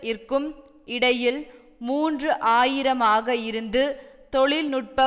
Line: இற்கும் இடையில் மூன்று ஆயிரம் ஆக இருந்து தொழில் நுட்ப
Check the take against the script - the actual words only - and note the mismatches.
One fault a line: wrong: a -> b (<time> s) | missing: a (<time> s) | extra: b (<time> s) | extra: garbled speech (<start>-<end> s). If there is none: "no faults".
no faults